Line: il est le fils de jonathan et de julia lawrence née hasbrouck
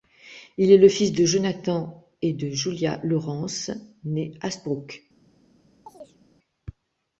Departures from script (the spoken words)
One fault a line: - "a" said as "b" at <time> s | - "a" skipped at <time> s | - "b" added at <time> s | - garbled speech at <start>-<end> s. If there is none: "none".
none